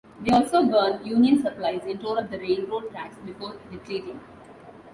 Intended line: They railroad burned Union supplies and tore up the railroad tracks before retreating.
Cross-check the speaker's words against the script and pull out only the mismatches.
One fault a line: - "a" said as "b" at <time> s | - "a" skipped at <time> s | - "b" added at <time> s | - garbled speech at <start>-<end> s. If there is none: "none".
- "railroad" said as "also" at 0.3 s